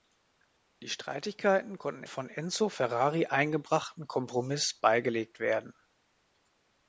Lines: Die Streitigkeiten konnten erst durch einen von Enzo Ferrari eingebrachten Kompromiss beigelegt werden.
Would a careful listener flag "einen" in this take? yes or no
yes